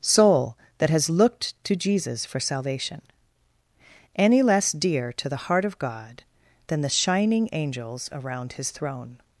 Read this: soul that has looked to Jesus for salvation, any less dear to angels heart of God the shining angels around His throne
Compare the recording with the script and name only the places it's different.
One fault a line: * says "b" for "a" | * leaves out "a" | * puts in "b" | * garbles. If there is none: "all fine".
* says "the" for "angels"
* puts in "than"